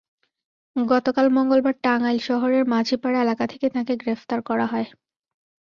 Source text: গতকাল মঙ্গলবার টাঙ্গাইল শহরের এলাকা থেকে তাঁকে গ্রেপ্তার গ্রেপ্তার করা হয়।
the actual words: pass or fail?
fail